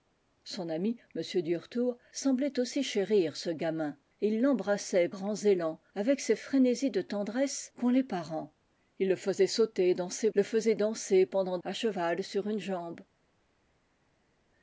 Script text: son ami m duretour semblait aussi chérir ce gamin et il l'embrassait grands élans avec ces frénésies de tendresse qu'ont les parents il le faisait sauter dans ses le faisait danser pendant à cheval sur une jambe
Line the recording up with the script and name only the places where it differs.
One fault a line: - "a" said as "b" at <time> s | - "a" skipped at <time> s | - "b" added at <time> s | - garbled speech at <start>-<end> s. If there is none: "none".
none